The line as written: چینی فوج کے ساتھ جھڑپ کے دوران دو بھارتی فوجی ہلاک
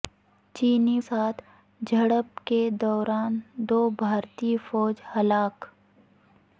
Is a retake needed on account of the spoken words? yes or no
yes